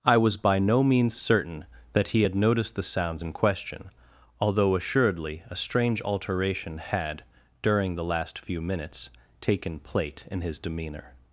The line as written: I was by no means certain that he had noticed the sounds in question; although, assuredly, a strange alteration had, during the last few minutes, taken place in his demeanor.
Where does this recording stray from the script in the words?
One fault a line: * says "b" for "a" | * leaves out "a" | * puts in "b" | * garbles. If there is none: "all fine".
* says "plate" for "place"